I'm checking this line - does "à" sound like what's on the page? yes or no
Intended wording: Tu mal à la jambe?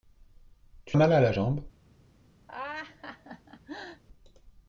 yes